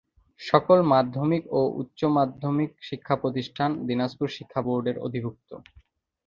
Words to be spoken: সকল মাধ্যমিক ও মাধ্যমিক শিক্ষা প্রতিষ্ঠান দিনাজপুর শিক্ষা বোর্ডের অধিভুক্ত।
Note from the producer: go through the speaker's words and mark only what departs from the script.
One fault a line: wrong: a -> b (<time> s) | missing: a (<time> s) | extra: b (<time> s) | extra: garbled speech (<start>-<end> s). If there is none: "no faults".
extra: উচ্চ (1.8 s)